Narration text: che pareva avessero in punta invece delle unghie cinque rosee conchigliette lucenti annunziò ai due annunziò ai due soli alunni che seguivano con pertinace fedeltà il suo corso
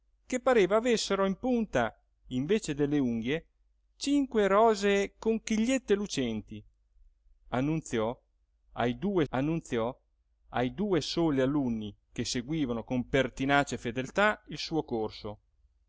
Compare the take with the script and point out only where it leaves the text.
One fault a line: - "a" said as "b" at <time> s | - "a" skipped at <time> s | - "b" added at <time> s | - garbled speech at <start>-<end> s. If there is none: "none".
none